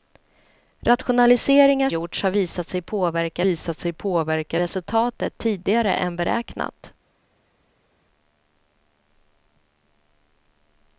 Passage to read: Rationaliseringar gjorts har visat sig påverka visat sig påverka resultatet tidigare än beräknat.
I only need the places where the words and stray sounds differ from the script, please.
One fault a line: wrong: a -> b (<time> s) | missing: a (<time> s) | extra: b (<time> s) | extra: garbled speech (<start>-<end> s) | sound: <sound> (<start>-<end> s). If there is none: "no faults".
no faults